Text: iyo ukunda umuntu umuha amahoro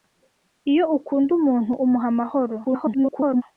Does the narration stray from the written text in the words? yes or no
yes